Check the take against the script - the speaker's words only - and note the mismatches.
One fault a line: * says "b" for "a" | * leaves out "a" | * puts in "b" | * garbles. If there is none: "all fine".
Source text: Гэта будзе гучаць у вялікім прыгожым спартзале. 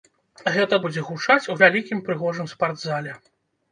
all fine